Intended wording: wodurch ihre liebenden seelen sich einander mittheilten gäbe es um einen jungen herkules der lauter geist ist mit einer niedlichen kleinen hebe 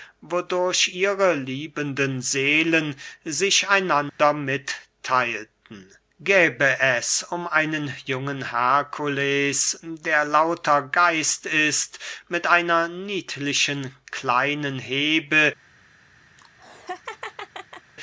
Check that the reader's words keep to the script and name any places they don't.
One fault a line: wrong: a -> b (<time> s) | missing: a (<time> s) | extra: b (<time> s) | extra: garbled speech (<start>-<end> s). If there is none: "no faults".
no faults